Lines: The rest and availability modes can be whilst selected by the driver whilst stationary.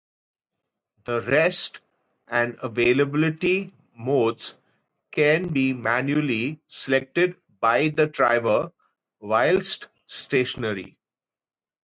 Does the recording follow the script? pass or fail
fail